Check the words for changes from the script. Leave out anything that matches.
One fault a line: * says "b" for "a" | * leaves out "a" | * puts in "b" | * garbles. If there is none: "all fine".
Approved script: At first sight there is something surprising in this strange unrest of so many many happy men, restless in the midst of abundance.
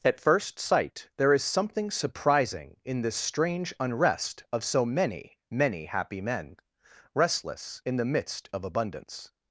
all fine